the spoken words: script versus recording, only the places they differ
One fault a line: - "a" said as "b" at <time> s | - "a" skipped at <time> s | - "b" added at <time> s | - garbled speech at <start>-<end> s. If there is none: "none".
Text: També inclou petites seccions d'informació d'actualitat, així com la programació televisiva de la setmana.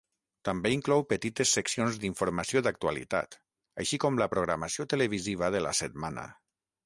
none